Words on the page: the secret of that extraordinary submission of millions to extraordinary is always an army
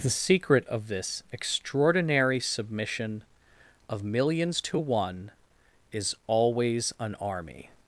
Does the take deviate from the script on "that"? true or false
true